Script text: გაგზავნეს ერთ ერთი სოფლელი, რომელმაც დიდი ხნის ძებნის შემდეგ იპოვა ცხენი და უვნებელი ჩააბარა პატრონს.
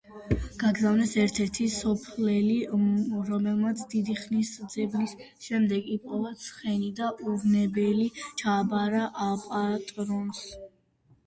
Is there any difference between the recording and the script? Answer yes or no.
no